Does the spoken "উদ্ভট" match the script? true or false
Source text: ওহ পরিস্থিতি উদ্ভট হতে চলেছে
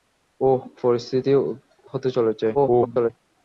false